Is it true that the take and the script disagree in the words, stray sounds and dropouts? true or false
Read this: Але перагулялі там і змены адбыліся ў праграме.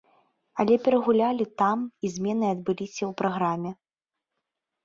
false